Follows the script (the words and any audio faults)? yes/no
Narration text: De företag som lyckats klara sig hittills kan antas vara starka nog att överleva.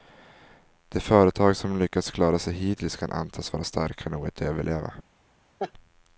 no